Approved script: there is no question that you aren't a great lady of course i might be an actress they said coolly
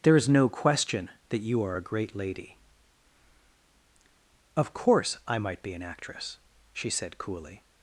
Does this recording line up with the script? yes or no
no